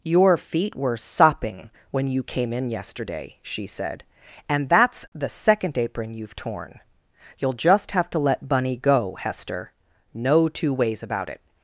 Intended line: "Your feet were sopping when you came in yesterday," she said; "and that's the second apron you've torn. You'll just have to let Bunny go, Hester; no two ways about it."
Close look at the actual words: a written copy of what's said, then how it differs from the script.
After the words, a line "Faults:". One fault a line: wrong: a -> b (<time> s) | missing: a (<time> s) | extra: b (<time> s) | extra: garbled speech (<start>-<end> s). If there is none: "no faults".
"Your feet were sopping when you came in yesterday," she said; "and that's the second apron you've torn. You'll just have to let Bunny go, Hester; no two ways about it."
Faults:
no faults